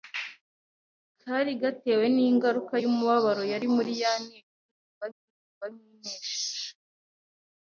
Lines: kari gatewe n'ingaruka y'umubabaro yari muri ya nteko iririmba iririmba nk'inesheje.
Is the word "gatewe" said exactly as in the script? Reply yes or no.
yes